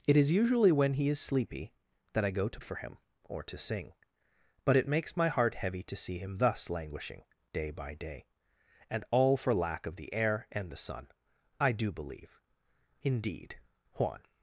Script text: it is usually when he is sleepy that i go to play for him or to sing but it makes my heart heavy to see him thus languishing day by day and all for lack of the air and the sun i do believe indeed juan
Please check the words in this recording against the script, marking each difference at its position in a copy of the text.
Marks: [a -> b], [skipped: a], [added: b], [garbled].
it is usually when he is sleepy that i go to [skipped: play] for him or to sing but it makes my heart heavy to see him thus languishing day by day and all for lack of the air and the sun i do believe indeed juan